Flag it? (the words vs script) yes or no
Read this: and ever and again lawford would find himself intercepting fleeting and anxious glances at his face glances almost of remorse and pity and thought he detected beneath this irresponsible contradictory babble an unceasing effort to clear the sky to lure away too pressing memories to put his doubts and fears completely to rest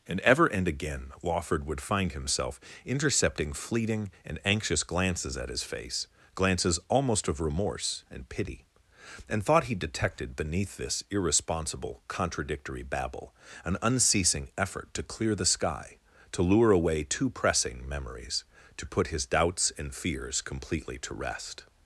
no